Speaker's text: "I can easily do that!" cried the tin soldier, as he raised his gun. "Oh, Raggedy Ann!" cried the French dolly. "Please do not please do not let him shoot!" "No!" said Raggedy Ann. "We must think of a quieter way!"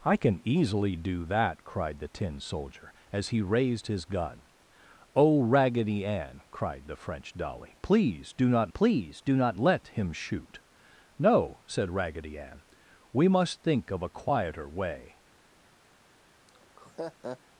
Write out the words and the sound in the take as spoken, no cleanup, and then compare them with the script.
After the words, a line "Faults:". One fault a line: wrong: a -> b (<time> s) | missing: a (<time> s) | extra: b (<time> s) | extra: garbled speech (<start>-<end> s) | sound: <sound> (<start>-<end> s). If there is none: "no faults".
"I can easily do that!" cried the tin soldier, as he raised his gun. "Oh, Raggedy Ann!" cried the French dolly. "Please do not please do not let him shoot!" "No!" said Raggedy Ann. "We must think of a quieter way!"
Faults:
sound: laugh (16.5-17.4 s)